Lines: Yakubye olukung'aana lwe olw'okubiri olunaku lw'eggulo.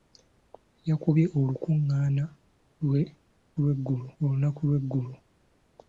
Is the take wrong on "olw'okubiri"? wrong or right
wrong